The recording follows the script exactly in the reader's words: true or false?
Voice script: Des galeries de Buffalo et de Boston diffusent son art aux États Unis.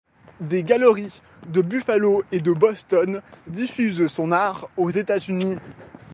true